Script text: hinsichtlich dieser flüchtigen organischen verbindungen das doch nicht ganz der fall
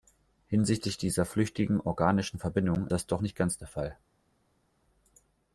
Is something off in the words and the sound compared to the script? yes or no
no